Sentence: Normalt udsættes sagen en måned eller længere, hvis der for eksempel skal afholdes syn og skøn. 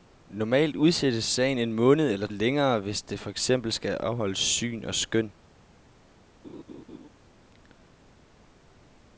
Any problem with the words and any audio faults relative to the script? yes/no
yes